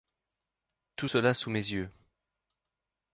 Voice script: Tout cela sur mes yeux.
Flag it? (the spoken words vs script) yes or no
yes